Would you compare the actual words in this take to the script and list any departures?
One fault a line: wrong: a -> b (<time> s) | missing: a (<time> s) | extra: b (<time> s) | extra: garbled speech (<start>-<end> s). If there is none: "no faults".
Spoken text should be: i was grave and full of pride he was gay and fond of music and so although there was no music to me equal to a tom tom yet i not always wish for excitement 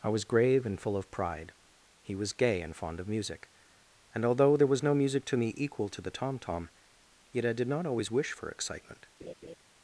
missing: so (4.2 s)
wrong: a -> the (6.0 s)
extra: did (7.5 s)